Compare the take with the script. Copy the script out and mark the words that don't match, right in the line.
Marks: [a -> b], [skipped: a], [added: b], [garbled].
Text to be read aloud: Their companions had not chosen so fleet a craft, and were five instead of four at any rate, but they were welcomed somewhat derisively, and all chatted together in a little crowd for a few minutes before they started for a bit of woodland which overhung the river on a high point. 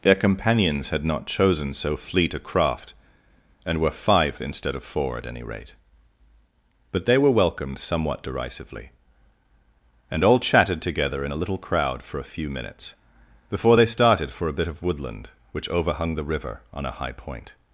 Their companions had not chosen so fleet a craft, and were five instead of four at any rate, but they were welcomed somewhat derisively, and all chatted together in a little crowd for a few minutes before they started for a bit of woodland which overhung the river on a high point.